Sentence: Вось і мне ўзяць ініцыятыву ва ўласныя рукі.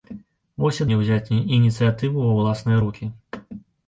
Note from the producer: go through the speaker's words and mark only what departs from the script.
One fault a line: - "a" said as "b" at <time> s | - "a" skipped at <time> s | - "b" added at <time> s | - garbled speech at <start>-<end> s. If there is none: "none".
none